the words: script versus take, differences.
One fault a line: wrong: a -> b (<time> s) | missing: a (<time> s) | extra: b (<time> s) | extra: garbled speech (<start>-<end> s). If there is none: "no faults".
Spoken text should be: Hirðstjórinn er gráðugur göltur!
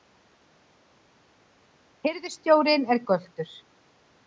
missing: gráðugur (3.0 s)